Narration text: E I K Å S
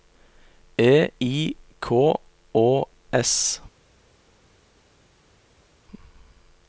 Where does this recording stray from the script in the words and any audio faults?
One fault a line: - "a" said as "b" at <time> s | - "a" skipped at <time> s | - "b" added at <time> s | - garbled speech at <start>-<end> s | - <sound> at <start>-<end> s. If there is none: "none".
none